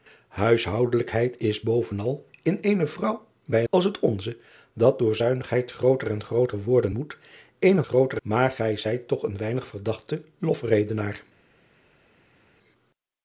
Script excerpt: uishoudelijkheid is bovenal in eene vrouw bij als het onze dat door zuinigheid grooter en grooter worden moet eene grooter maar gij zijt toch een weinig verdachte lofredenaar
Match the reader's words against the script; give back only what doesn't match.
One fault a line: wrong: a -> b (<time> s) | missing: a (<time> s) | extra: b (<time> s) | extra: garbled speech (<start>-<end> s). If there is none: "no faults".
no faults